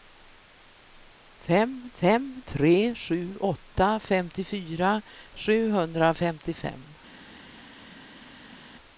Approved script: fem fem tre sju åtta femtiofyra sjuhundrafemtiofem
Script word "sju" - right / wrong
right